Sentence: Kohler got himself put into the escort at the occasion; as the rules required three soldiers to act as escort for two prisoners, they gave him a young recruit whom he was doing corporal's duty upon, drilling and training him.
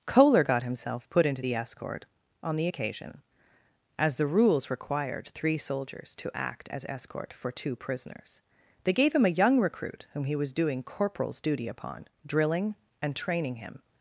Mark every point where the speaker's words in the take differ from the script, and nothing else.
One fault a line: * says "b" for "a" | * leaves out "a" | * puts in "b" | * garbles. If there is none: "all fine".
* says "on" for "at"